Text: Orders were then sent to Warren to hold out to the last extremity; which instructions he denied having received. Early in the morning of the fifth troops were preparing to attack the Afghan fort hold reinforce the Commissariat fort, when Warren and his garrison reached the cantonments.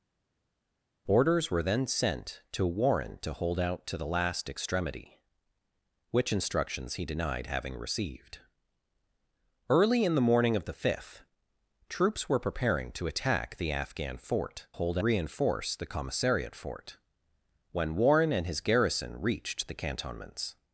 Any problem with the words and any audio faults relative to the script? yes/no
no